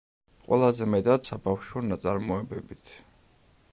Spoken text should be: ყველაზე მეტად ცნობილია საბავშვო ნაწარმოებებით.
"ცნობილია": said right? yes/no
no